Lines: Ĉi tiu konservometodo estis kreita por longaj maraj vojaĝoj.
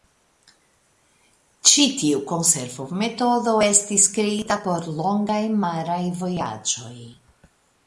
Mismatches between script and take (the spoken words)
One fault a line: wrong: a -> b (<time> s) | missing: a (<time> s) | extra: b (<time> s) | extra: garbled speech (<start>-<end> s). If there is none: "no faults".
no faults